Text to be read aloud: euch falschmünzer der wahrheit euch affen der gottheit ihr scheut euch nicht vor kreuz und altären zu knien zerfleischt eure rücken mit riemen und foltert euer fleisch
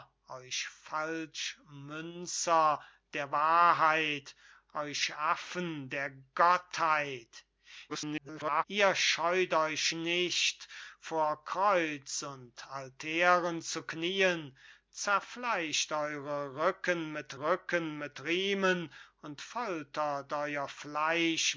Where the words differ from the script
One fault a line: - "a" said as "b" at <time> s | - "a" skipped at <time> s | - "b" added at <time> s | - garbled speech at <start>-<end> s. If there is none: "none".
- garbled speech at 7.9-8.6 s
- "rücken mit" added at 17.4 s